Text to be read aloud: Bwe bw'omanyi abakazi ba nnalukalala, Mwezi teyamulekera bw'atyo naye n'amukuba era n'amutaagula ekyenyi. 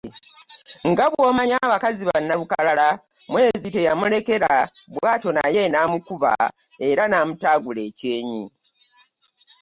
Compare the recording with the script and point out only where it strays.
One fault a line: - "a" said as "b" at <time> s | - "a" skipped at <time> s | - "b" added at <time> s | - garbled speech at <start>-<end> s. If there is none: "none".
- "Bwe" said as "Nga" at 0.9 s